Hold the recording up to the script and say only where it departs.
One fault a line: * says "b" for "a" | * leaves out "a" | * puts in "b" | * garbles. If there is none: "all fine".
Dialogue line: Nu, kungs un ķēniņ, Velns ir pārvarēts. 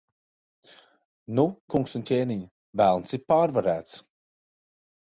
all fine